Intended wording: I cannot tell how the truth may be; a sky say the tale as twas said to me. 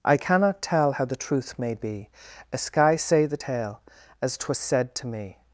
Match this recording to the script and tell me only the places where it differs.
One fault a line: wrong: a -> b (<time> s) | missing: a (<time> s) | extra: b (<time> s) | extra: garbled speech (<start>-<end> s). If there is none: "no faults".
no faults